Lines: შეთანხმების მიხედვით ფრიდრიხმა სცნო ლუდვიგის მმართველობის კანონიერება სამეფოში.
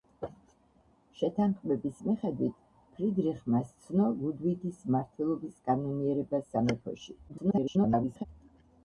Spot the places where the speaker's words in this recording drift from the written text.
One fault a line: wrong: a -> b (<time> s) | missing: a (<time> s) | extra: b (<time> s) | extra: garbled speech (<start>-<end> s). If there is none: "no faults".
extra: garbled speech (7.3-8.3 s)